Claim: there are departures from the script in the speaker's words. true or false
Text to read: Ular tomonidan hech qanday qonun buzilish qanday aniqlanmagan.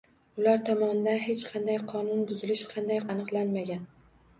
false